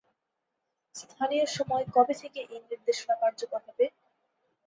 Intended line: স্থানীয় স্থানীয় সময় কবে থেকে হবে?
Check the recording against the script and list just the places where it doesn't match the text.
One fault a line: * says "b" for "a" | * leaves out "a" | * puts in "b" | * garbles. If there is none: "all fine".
* leaves out "স্থানীয়"
* puts in "এই নির্দেশনা কার্যকর"